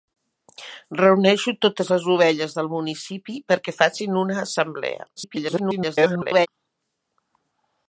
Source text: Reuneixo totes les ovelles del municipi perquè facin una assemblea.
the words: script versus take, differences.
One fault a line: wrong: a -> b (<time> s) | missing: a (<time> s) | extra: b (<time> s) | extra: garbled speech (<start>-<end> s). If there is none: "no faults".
extra: garbled speech (5.2-6.5 s)